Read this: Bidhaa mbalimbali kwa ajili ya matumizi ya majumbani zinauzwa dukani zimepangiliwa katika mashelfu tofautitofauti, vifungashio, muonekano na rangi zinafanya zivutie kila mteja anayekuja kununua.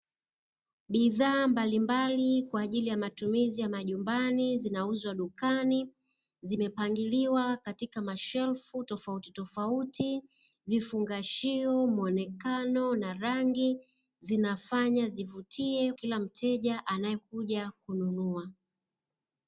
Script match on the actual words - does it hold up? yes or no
yes